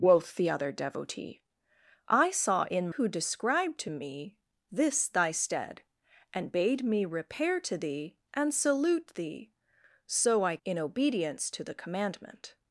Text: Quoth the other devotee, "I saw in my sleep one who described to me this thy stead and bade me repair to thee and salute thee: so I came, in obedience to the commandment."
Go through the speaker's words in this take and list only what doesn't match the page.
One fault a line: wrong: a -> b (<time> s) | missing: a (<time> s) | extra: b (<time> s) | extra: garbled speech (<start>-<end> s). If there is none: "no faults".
missing: my sleep one (2.9 s)
missing: came (10.6 s)